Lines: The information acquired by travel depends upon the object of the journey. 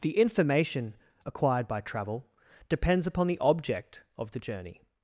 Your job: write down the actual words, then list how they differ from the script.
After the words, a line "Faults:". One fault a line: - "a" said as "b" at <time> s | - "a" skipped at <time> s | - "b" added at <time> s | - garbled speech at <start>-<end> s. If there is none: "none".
The information acquired by travel depends upon the object of the journey.
Faults:
none